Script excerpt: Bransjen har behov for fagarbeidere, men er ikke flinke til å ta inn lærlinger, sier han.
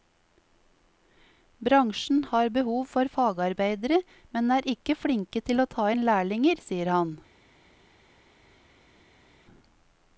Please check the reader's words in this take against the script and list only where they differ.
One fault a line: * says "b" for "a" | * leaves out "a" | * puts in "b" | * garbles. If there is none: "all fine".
all fine